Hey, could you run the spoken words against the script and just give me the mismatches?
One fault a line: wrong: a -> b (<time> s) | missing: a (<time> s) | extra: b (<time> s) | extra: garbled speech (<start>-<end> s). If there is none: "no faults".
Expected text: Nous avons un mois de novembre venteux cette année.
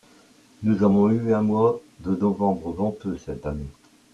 extra: eu (1.1 s)